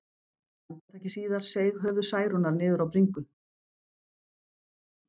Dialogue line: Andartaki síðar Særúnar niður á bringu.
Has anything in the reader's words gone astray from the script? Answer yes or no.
yes